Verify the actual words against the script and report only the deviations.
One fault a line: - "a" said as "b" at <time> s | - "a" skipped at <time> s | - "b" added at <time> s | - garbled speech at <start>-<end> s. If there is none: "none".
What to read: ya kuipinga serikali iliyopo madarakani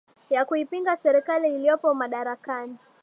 none